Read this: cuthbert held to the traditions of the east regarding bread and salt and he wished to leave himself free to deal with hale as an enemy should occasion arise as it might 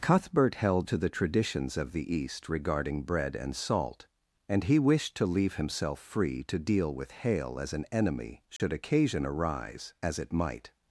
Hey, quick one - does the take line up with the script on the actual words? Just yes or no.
yes